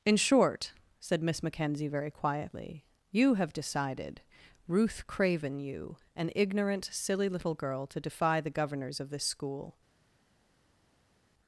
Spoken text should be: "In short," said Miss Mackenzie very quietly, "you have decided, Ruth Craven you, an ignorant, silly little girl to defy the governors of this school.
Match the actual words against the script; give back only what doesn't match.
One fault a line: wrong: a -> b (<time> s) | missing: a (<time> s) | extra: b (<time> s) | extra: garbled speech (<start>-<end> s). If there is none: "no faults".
no faults